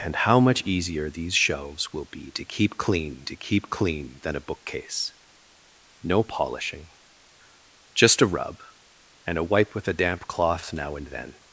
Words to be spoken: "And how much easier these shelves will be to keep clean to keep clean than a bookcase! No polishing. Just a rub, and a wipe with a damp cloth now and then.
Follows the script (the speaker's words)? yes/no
yes